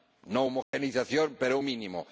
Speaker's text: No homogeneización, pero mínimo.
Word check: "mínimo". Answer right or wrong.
right